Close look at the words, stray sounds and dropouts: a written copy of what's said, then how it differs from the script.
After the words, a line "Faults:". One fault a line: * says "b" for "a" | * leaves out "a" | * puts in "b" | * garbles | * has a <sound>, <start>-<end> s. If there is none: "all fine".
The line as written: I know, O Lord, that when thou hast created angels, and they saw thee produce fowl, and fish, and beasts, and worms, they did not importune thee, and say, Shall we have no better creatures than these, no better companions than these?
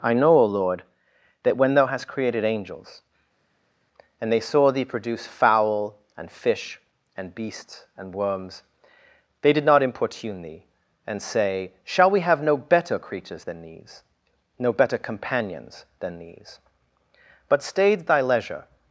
I know, O Lord, that when thou hast created angels, and they saw thee produce fowl, and fish, and beasts, and worms, they did not importune thee, and say, Shall we have no better creatures than these, no better companions than these? but stayed thy leisure
Faults:
* puts in "but stayed thy leisure"